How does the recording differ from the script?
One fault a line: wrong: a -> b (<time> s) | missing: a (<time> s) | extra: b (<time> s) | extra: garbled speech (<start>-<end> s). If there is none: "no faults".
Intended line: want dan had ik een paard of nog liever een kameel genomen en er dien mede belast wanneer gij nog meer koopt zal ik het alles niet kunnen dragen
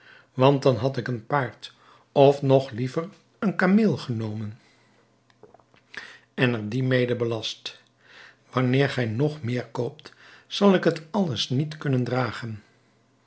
no faults